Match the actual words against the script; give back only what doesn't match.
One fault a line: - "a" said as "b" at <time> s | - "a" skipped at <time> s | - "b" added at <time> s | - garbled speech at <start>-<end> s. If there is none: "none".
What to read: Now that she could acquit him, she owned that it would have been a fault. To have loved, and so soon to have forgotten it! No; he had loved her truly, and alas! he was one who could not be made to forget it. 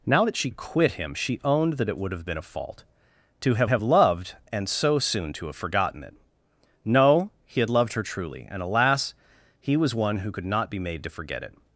- "could" skipped at 0.5 s
- "have" added at 3.7 s